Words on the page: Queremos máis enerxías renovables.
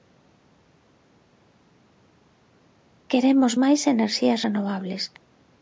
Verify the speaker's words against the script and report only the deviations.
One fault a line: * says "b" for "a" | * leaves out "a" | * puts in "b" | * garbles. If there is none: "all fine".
all fine